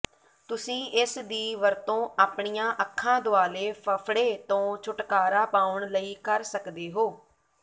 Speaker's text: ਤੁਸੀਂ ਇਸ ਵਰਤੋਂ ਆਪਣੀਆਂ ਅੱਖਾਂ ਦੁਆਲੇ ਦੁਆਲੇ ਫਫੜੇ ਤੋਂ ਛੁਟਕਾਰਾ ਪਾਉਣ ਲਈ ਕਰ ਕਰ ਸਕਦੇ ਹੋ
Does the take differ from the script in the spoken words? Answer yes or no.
yes